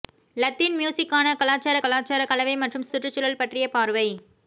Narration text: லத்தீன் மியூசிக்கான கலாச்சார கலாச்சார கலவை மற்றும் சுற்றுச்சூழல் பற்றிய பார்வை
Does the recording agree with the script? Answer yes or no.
yes